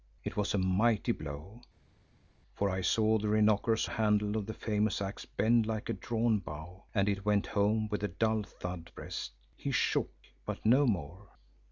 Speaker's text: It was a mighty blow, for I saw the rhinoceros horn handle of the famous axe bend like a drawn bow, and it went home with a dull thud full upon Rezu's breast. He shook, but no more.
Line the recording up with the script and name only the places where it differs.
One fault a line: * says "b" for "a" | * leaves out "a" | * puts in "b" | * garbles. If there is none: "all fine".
* leaves out "horn"
* leaves out "full upon Rezu's"